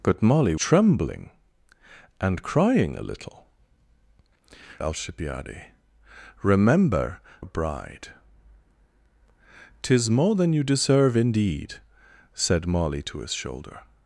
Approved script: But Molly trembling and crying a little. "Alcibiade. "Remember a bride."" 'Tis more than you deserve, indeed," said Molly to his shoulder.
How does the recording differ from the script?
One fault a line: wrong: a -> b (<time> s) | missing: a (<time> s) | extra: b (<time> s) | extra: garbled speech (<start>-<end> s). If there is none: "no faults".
no faults